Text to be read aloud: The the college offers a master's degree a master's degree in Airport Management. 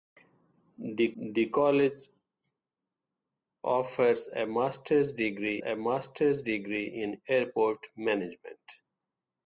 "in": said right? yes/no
yes